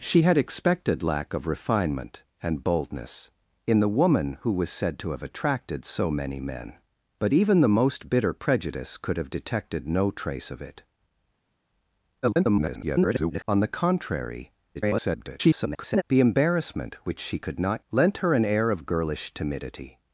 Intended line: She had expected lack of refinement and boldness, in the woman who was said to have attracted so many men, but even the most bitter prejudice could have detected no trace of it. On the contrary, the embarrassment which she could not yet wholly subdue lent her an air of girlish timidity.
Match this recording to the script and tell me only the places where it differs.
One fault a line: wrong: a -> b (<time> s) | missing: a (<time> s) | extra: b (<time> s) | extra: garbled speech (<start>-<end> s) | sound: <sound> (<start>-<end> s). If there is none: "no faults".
extra: garbled speech (12.2-13.4 s)
extra: garbled speech (14.7-16.0 s)
missing: yet wholly subdue (17.8 s)